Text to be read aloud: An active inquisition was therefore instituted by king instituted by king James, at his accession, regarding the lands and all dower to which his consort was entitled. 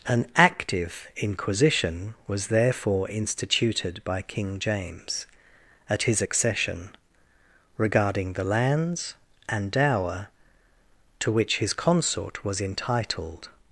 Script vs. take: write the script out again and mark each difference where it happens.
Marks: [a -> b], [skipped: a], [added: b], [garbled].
An active inquisition was therefore instituted by king [skipped: instituted by king] James, at his accession, regarding the lands and [skipped: all] dower to which his consort was entitled.